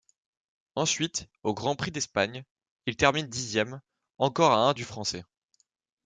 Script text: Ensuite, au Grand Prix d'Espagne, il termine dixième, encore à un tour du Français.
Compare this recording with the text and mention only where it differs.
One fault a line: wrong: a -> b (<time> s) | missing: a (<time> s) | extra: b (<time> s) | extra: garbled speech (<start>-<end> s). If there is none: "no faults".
missing: tour (4.7 s)